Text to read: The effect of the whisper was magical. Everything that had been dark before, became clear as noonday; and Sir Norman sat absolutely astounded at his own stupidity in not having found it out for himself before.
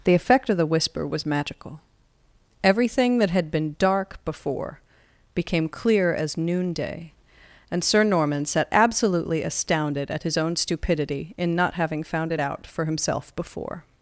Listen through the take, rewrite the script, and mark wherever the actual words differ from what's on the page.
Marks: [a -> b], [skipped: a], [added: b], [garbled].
The effect of the whisper was magical. Everything that had been dark before, became clear as noonday; and Sir Norman sat absolutely astounded at his own stupidity in not having found it out for himself before.